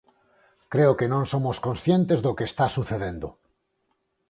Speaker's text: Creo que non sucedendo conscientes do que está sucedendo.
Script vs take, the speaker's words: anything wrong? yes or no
yes